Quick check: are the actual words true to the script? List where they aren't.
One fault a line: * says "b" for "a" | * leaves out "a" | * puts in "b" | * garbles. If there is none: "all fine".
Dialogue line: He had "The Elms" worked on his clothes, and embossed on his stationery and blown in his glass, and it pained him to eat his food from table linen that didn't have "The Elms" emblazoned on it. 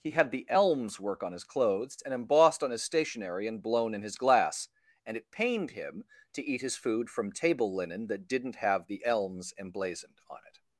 * says "work" for "worked"